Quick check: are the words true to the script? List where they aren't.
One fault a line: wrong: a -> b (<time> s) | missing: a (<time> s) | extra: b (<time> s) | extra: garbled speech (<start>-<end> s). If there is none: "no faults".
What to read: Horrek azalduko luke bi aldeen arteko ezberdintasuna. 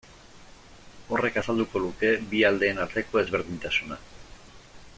no faults